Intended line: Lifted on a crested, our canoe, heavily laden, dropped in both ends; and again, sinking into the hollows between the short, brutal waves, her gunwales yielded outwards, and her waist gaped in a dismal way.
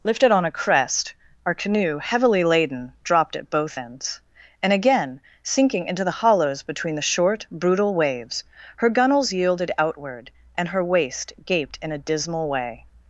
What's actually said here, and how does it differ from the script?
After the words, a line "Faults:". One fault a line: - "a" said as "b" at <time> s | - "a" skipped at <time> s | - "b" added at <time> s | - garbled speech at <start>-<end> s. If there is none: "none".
Lifted on a crest, our canoe, heavily laden, dropped at both ends; and again, sinking into the hollows between the short, brutal waves, her gunwales yielded outward, and her waist gaped in a dismal way.
Faults:
- "crested" said as "crest" at 0.5 s
- "in" said as "at" at 3.4 s
- "outwards" said as "outward" at 9.8 s